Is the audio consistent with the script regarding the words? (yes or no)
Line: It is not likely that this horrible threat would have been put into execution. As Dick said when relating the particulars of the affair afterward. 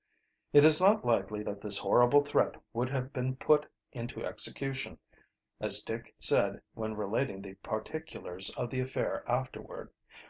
yes